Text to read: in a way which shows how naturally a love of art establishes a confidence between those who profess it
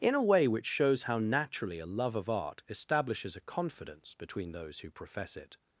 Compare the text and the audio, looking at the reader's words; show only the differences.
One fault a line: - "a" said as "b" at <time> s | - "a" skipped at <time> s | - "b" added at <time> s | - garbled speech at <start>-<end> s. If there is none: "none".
none